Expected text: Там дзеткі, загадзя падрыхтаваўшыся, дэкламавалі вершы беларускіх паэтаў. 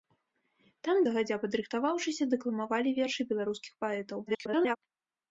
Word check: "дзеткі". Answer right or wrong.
wrong